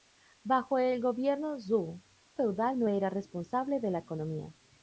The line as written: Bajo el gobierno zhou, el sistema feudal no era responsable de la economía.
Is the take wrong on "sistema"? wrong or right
wrong